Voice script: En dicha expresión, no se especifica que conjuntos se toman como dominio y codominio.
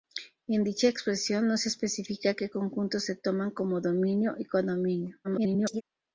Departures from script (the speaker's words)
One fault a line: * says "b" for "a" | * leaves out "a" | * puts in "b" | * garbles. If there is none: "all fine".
* garbles